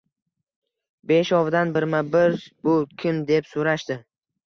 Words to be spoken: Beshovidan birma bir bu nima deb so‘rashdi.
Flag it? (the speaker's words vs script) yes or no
yes